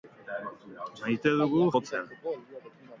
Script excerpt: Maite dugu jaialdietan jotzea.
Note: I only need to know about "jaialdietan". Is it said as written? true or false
false